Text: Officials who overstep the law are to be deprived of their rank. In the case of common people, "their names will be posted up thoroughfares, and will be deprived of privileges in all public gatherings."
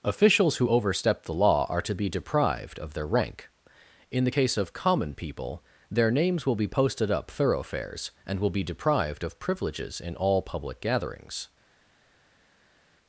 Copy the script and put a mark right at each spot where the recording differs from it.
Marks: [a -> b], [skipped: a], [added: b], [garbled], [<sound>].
Officials who overstep the law are to be deprived of their rank. In the case of common people, "their names will be posted up thoroughfares, and will be deprived of privileges in all public gatherings."